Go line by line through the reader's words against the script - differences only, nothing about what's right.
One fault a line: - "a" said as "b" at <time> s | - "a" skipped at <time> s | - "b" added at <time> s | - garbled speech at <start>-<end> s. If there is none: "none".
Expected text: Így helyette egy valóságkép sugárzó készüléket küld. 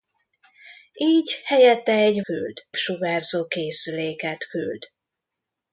- "valóságkép" said as "küld" at 2.2 s